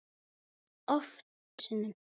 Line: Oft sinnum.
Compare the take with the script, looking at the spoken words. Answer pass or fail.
pass